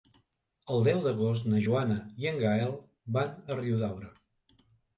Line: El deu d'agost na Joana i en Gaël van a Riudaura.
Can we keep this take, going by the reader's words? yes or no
yes